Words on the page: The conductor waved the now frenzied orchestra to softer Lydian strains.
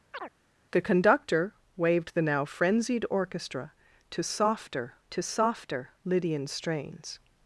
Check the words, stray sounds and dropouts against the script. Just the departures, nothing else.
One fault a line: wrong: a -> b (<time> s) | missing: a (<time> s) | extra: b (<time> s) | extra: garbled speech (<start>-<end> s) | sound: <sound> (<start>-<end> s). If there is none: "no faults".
sound: chirp (0.1-0.3 s)
extra: to softer (5.1 s)